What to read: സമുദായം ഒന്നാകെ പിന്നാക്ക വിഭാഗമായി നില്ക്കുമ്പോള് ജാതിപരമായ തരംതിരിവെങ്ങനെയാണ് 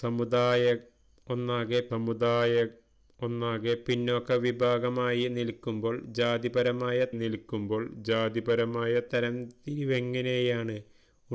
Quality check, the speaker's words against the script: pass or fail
fail